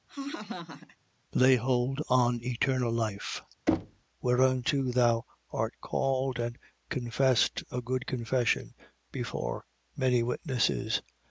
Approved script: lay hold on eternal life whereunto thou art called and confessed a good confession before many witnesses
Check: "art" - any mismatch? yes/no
no